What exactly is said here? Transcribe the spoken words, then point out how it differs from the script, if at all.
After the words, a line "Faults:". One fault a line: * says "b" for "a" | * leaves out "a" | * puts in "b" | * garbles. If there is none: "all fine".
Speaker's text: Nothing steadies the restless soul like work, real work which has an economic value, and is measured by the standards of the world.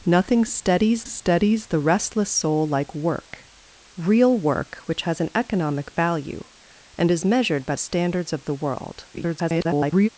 Nothing steadies steadies the restless soul like work, real work which has an economic value, and is measured by standards of the world. [garbled]
Faults:
* puts in "steadies"
* leaves out "the"
* garbles